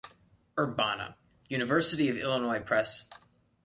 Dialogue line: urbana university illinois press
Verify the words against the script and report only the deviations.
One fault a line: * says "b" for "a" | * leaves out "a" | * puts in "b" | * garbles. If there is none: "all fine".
* puts in "of"